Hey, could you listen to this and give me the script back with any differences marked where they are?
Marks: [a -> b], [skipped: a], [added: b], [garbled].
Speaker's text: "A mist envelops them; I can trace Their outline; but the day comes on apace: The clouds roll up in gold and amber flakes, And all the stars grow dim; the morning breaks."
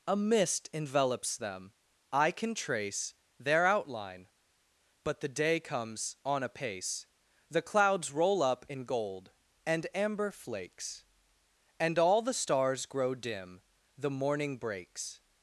"A mist envelops them; I can trace Their outline; but the day comes on apace: The clouds roll up in gold and amber flakes, And all the stars grow dim; the morning breaks."